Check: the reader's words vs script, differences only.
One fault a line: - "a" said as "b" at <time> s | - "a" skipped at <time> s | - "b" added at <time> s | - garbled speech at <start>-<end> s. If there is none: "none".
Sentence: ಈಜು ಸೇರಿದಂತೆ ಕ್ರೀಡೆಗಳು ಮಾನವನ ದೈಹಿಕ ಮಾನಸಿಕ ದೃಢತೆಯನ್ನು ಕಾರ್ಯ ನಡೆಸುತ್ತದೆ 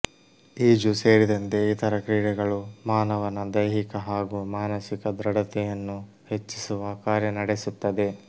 - "ಇತರ" added at 1.7 s
- "ಹಾಗೂ" added at 4.1 s
- "ಹೆಚ್ಚಿಸುವ" added at 6.3 s